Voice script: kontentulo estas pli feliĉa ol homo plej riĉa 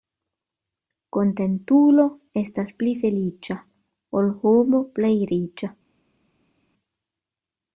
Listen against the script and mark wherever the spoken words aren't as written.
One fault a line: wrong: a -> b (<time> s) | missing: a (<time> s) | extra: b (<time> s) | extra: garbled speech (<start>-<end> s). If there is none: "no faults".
no faults